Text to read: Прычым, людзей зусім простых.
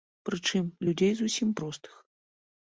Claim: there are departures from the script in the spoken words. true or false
false